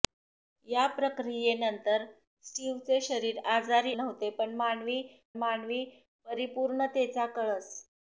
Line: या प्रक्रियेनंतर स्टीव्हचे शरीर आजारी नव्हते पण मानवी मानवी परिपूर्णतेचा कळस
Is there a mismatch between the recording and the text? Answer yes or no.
no